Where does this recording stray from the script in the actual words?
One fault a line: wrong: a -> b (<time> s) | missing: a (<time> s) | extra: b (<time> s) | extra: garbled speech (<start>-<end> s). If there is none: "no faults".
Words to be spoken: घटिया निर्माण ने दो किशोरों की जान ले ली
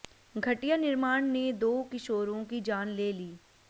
no faults